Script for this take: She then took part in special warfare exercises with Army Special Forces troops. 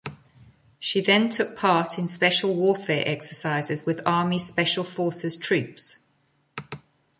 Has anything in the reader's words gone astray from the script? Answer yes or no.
no